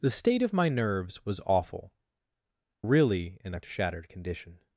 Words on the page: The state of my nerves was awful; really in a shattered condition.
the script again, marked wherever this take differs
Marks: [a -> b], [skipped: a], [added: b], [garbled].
The state of my nerves was awful; really in a shattered condition.